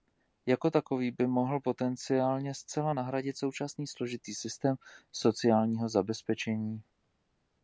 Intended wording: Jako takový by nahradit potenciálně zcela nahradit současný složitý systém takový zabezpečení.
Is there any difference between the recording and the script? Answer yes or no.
yes